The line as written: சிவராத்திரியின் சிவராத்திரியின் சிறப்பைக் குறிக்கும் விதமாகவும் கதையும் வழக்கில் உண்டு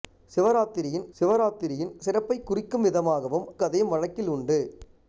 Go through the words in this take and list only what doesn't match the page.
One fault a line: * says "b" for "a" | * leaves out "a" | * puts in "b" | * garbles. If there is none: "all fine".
all fine